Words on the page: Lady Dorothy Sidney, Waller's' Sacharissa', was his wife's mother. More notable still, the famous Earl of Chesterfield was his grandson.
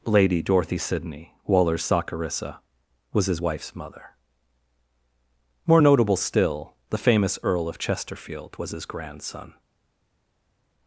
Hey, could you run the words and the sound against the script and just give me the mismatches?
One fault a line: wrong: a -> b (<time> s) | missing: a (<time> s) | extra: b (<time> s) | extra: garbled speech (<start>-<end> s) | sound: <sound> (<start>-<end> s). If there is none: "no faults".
no faults